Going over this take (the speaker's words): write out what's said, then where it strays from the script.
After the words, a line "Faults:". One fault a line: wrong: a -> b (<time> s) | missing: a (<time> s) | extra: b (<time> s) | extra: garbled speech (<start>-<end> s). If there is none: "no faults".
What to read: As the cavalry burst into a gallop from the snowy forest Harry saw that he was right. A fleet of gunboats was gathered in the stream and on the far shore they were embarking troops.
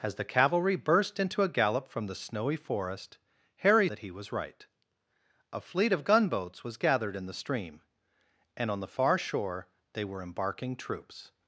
As the cavalry burst into a gallop from the snowy forest Harry that he was right. A fleet of gunboats was gathered in the stream and on the far shore they were embarking troops.
Faults:
missing: saw (3.9 s)